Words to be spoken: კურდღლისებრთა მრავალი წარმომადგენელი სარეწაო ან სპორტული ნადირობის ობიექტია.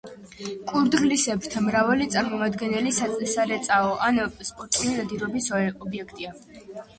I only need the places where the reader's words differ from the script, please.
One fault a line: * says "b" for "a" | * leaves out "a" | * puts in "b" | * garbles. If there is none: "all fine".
all fine